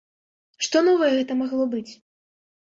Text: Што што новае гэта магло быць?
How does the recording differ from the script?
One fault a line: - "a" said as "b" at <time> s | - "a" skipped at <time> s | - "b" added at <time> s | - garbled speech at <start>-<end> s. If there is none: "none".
- "што" skipped at 0.8 s